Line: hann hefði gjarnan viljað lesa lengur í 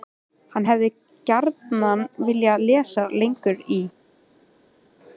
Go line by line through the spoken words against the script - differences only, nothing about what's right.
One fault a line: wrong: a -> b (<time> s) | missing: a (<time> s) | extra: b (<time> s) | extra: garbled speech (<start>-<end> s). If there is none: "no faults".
no faults